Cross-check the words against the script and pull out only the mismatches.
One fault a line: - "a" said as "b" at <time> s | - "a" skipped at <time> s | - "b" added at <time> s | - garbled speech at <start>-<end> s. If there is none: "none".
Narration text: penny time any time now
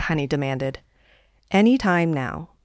- "time" said as "demanded" at 0.2 s